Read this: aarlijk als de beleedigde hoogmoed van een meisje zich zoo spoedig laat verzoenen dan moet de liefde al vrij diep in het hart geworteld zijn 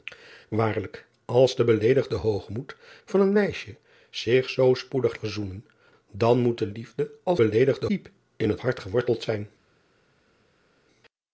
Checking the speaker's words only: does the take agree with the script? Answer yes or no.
no